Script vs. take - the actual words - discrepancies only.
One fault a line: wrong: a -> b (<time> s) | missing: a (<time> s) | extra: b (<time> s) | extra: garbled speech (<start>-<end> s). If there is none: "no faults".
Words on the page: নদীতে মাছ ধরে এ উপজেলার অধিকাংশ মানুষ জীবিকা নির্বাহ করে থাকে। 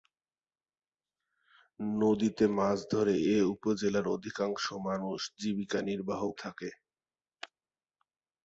missing: করে (6.2 s)